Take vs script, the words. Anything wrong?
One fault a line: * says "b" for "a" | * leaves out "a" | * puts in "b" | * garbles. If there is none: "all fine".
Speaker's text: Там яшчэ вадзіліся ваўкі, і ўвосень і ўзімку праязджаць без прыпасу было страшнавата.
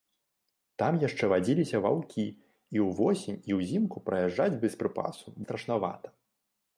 * leaves out "было"